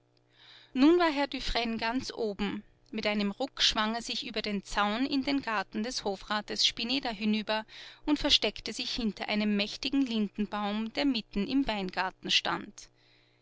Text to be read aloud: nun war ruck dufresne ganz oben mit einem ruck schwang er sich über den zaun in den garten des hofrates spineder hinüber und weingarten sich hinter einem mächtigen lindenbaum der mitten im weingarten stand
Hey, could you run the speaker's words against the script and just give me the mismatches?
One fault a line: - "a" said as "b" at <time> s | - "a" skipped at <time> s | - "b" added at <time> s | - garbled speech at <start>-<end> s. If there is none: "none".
- "ruck" said as "herr" at 1.1 s
- "weingarten" said as "versteckte" at 8.2 s